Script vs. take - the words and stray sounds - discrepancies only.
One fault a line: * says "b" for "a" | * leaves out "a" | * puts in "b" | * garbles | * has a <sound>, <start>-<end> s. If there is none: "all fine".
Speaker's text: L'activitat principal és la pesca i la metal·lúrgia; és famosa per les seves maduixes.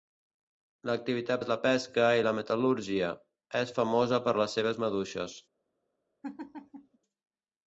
* leaves out "principal"
* has a laugh, 6.2-7.0 s